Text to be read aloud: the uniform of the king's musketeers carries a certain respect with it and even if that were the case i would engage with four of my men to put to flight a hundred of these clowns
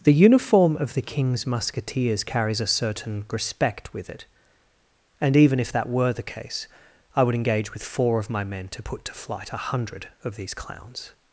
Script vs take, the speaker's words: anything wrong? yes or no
no